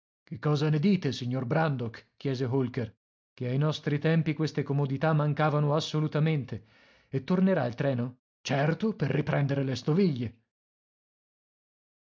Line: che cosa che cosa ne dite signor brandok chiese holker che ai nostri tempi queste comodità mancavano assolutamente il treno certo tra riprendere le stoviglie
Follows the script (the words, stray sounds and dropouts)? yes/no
no